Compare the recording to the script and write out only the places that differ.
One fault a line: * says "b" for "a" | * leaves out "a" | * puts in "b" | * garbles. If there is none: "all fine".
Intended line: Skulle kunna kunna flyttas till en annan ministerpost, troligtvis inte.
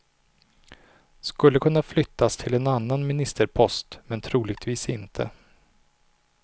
* leaves out "kunna"
* puts in "men"